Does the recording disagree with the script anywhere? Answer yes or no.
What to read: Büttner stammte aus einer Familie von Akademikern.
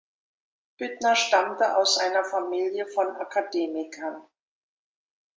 no